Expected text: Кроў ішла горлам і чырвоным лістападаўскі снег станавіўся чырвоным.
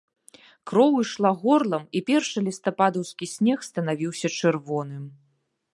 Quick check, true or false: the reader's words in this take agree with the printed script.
false